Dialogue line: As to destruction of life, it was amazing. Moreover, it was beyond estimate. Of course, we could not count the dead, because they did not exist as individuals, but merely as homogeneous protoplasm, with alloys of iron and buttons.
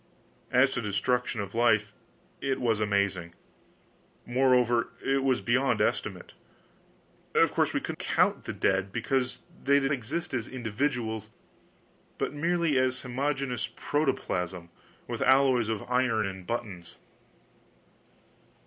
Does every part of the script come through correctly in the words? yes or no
no